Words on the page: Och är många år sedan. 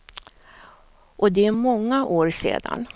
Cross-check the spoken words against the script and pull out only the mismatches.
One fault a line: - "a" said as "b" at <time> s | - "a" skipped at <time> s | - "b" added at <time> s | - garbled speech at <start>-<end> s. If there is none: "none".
- "det" added at 1.3 s